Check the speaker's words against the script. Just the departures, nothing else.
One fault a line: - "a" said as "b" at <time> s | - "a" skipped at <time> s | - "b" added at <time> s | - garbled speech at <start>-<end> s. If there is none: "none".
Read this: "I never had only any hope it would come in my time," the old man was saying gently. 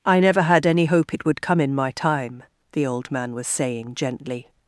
- "only" skipped at 0.7 s